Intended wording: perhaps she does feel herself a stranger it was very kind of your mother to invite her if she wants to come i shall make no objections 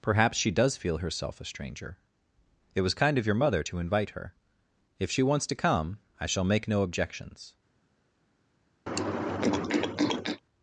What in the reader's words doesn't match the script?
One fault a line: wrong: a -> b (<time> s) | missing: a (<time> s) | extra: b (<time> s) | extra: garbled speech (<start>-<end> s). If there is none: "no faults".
missing: very (3.0 s)